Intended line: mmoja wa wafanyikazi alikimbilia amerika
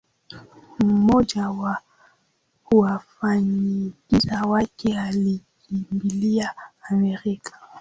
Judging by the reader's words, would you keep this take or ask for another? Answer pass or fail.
fail